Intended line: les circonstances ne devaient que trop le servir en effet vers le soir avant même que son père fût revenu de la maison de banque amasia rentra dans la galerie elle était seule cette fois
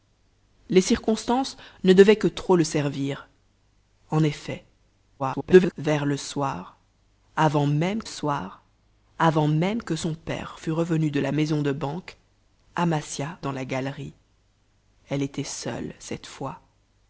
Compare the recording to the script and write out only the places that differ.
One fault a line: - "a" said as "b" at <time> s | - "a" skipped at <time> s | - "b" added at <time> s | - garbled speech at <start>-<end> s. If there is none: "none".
- garbled speech at 5.2-5.7 s
- "soir avant même" added at 8.1 s
- "rentra" skipped at 13.4 s